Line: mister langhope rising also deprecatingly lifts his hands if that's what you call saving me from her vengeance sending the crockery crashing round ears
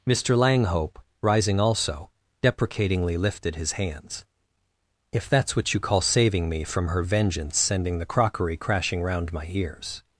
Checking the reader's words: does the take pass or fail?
fail